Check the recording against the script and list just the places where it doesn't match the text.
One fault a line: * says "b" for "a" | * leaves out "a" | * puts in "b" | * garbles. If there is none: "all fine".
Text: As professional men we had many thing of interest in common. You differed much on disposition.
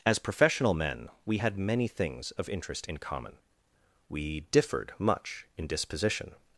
* says "things" for "thing"
* says "We" for "You"
* says "in" for "on"